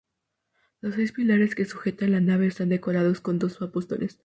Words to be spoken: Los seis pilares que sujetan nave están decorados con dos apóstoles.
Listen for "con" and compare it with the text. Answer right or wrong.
right